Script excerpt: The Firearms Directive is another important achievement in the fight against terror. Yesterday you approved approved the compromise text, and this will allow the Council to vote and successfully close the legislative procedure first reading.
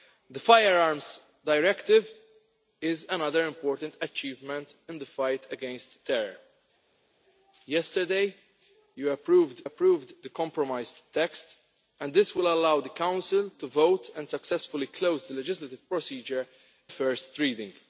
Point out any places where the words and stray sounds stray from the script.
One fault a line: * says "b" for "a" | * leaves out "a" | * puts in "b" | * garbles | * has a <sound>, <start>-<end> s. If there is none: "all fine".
all fine